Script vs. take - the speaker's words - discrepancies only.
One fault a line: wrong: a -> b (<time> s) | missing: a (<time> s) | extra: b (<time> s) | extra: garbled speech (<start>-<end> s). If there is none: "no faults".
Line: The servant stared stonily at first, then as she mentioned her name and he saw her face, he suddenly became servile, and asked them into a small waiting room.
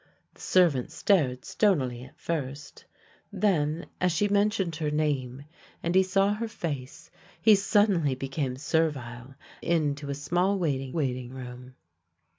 missing: and asked them (9.3 s)
extra: waiting (10.9 s)